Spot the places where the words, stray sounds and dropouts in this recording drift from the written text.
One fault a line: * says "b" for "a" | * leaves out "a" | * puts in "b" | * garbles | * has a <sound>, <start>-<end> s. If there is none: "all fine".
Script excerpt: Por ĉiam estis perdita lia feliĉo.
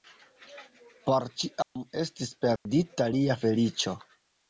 * has a dropout, 1.6-1.8 s
* has a dropout, 2.6-2.7 s